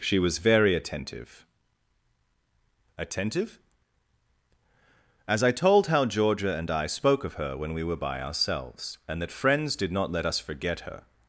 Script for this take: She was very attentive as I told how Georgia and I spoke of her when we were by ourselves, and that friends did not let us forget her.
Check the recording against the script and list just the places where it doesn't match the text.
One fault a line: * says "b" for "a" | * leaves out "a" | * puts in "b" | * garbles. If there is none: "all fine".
* puts in "attentive"